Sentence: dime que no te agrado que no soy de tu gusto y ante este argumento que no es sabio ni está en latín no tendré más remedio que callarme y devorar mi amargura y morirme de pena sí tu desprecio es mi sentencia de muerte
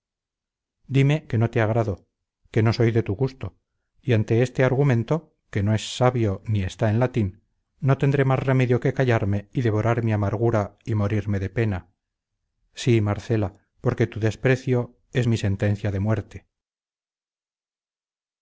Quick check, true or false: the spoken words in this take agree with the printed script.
false